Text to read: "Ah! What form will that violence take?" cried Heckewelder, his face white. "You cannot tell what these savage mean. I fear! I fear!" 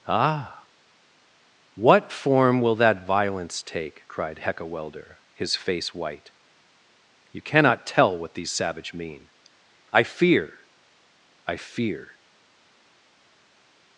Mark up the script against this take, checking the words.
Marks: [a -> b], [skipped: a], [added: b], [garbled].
"Ah! What form will that violence take?" cried Heckewelder, his face white. "You cannot tell what these savage mean. I fear! I fear!"